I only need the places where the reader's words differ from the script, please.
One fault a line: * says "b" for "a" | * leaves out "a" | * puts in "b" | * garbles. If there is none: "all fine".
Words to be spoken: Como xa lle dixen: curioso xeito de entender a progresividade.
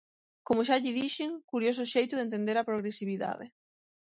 all fine